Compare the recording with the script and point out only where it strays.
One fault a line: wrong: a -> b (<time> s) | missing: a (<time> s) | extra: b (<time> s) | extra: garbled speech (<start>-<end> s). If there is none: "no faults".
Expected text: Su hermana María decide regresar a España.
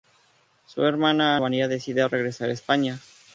no faults